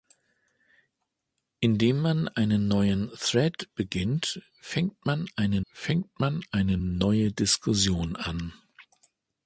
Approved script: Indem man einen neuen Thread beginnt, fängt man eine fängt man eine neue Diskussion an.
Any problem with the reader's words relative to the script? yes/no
no